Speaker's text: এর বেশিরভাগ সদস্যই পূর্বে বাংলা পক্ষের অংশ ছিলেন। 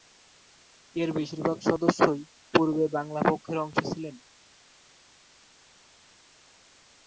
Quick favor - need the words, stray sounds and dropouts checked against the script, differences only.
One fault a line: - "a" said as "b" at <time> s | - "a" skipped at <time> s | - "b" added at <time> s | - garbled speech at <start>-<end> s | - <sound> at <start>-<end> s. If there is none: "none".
none